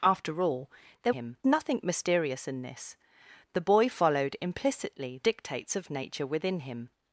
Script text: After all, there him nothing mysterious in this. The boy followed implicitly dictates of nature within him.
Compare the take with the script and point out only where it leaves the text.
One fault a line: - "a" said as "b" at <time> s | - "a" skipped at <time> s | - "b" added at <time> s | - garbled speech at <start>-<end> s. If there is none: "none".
none